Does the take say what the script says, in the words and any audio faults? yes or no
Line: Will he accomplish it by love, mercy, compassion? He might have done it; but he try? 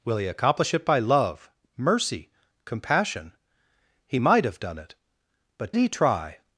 yes